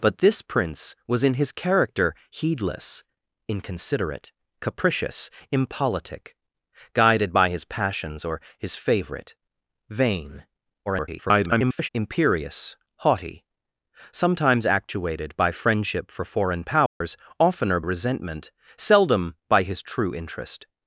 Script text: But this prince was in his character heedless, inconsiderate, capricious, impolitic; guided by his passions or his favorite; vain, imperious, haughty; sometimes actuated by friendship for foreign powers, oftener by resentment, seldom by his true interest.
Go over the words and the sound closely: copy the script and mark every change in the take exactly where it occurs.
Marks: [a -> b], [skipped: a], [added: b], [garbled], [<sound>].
But this prince was in his character heedless, inconsiderate, capricious, impolitic; guided by his passions or his favorite; vain, [garbled] imperious, haughty; sometimes actuated by friendship for foreign powers, [dropout] oftener [skipped: by] resentment, seldom by his true interest.